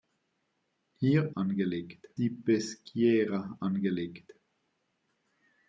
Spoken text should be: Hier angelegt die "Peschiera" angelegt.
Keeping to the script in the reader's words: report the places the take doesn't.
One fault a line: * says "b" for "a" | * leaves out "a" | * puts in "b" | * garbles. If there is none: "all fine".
all fine